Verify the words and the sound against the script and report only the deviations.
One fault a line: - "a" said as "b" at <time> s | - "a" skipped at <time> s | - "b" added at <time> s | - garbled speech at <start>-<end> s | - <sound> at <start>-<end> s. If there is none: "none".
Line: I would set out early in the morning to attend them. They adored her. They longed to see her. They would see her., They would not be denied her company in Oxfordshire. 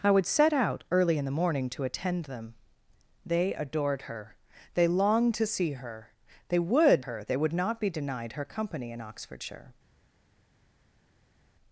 - "see" skipped at 7.0 s